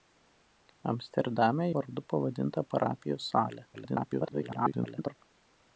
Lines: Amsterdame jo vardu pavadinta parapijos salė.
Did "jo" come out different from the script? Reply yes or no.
yes